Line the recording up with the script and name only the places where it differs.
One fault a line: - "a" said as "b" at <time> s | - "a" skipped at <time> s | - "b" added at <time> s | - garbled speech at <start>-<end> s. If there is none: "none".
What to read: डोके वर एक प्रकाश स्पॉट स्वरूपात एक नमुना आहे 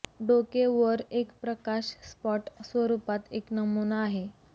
none